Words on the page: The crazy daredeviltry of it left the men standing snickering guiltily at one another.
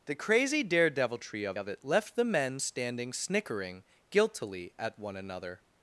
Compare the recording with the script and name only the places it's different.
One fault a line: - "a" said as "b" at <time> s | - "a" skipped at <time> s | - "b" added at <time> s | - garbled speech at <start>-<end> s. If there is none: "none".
- "of" added at 1.6 s